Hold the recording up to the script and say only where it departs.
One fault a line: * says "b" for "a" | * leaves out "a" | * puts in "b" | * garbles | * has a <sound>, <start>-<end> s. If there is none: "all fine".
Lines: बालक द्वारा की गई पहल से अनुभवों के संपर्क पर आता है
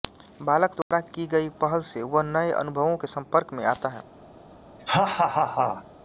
* has a dropout, 0.8-0.9 s
* puts in "वह नए"
* says "में" for "पर"
* has a laugh, 4.8-5.8 s